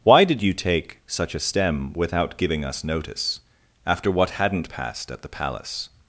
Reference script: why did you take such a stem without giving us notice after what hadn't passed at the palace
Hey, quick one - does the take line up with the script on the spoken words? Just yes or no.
yes